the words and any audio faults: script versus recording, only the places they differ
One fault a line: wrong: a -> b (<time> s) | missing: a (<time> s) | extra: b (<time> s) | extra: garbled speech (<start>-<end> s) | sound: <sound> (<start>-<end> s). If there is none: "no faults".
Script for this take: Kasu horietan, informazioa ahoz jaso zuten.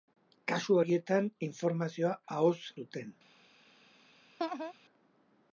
missing: jaso (2.5 s)
sound: laugh (4.4-4.7 s)